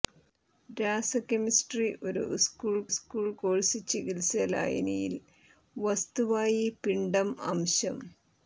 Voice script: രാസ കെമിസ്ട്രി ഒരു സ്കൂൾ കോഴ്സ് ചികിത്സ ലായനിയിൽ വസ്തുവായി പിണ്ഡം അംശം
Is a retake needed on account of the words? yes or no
yes